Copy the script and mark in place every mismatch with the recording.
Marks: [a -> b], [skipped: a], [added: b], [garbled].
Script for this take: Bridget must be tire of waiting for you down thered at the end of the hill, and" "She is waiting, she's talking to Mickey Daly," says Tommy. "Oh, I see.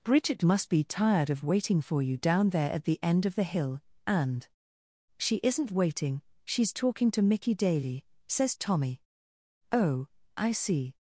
Bridget must be [tire -> tired] of waiting for you down [thered -> there] at the end of the hill, and" "She [is -> isn't] waiting, she's talking to Mickey Daly," says Tommy. "Oh, I see.